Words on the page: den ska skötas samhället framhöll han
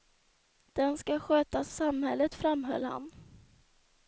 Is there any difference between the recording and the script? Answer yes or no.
no